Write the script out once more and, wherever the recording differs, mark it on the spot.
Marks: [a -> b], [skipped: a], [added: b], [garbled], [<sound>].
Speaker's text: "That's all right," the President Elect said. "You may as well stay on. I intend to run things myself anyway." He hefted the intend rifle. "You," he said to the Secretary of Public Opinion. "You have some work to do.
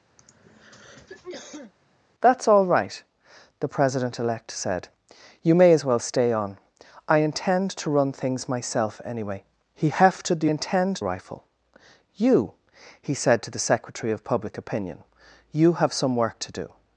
[throat clearing] "That's all right," the President Elect said. "You may as well stay on. I intend to run things myself anyway." He hefted the intend rifle. "You," he said to the Secretary of Public Opinion. "You have some work to do.